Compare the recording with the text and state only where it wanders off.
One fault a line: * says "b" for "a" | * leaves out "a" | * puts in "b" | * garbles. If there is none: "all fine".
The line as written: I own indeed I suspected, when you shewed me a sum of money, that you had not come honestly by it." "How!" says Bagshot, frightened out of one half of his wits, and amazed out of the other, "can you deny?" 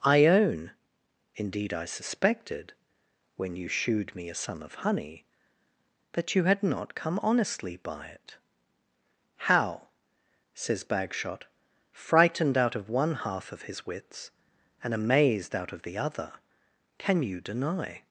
* says "honey" for "money"